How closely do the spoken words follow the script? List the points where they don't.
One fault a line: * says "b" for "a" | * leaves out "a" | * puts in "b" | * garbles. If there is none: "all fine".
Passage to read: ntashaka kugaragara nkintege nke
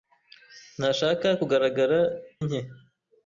* leaves out "nkintege"